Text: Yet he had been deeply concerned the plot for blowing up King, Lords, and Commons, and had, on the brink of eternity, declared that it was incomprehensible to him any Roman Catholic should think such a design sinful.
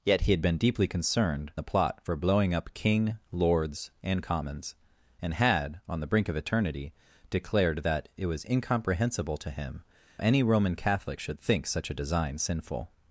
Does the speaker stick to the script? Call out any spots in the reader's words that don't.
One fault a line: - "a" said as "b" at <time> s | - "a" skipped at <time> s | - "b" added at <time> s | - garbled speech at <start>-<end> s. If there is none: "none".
none